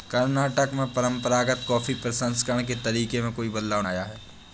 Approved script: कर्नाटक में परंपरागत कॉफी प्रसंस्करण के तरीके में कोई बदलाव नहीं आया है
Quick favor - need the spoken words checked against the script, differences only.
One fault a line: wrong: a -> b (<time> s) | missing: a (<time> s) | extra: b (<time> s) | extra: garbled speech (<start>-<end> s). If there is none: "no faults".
missing: नहीं (3.8 s)